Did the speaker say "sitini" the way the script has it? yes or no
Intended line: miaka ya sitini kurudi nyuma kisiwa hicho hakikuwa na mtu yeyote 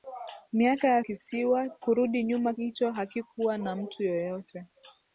no